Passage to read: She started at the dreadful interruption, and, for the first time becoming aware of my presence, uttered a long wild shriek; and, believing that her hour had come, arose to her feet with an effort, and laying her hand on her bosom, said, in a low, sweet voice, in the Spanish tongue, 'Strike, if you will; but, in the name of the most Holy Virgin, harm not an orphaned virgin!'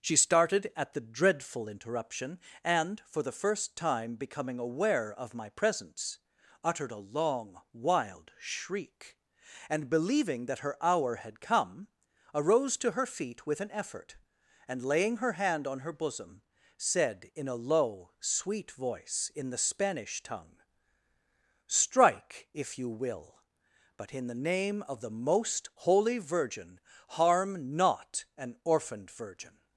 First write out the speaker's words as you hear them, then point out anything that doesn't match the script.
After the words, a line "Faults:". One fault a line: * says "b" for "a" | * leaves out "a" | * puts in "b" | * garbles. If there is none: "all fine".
She started at the dreadful interruption, and, for the first time becoming aware of my presence, uttered a long wild shriek; and, believing that her hour had come, arose to her feet with an effort, and laying her hand on her bosom, said, in a low, sweet voice, in the Spanish tongue, 'Strike, if you will; but, in the name of the most Holy Virgin, harm not an orphaned virgin!'
Faults:
all fine